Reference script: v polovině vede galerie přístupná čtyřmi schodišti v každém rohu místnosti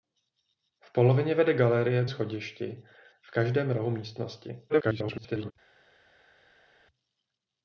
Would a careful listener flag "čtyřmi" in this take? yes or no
yes